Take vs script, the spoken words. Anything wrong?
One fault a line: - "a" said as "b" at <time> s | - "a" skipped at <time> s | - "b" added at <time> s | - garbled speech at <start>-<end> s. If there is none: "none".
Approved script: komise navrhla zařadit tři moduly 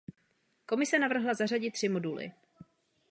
none